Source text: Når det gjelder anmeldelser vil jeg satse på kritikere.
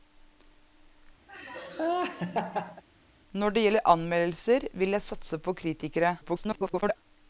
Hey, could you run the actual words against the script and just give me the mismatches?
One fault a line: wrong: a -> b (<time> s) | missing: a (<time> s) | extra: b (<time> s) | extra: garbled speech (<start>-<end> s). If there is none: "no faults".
extra: garbled speech (6.2-7.0 s)